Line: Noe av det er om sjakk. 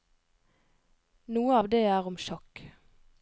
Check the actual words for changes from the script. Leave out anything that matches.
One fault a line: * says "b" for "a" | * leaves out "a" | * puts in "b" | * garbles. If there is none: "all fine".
all fine